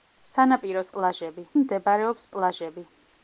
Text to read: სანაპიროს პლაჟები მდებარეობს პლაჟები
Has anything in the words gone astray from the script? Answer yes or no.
no